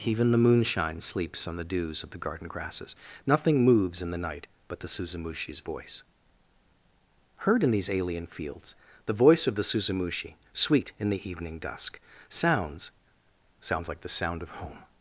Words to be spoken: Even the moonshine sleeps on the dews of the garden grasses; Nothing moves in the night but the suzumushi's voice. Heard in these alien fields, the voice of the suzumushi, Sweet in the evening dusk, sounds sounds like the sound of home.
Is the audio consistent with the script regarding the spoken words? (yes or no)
yes